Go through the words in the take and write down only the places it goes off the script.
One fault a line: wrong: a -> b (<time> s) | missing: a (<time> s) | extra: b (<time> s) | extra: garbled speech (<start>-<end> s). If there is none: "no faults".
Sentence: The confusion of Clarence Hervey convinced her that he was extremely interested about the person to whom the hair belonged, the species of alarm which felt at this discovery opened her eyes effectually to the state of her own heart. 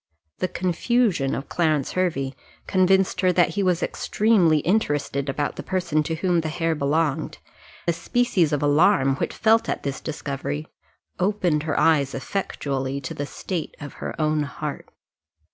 no faults